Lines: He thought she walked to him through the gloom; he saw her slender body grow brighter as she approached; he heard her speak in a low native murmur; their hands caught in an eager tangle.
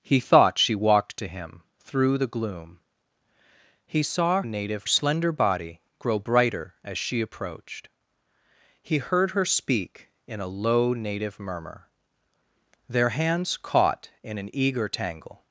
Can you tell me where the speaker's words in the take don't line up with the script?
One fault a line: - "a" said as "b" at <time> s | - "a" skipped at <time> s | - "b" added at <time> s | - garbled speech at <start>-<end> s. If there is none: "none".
- "her" said as "native" at 4.4 s